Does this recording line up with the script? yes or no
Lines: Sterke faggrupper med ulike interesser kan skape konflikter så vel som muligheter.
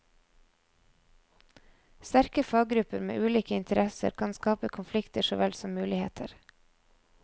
yes